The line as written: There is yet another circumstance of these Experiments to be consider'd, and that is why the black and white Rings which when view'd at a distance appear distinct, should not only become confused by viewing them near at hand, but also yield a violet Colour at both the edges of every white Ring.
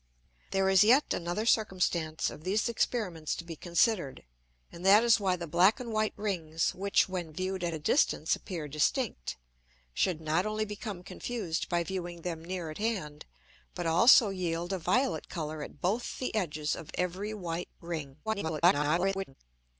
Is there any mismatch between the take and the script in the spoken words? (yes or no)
yes